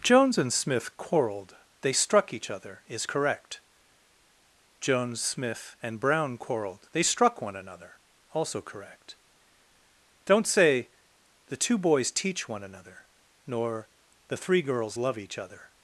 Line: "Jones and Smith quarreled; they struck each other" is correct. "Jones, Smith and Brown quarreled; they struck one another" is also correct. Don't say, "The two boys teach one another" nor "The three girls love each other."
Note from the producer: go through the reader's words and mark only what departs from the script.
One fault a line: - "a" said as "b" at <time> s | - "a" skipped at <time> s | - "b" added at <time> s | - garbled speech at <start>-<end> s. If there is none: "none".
- "is" skipped at 8.0 s